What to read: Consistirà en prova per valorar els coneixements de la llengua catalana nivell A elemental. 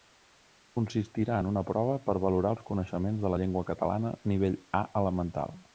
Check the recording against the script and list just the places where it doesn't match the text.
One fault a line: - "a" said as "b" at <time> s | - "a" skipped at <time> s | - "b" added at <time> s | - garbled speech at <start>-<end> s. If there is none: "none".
- "una" added at 1.5 s